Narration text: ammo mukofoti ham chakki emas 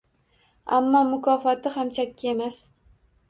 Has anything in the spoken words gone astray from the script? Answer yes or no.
no